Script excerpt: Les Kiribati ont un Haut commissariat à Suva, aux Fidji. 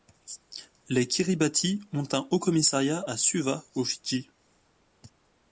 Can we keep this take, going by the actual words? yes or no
yes